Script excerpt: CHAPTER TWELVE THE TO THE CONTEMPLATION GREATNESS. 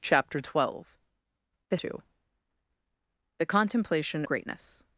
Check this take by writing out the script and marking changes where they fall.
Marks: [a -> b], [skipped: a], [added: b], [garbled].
CHAPTER TWELVE THE TO THE CONTEMPLATION GREATNESS.